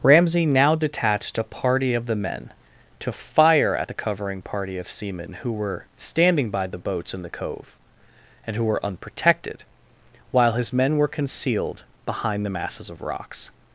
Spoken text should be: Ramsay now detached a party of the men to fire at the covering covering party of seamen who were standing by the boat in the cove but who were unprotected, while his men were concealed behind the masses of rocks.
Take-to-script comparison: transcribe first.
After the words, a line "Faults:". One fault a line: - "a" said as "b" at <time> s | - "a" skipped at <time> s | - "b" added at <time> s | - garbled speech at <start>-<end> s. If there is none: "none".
Ramsay now detached a party of the men to fire at the covering party of seamen who were standing by the boats in the cove and who were unprotected, while his men were concealed behind the masses of rocks.
Faults:
- "covering" skipped at 4.4 s
- "boat" said as "boats" at 6.8 s
- "but" said as "and" at 8.5 s